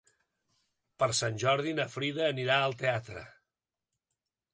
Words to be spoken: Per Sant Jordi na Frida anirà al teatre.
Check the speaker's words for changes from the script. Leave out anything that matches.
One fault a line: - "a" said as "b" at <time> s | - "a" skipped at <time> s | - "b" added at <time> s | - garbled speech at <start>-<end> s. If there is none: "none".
none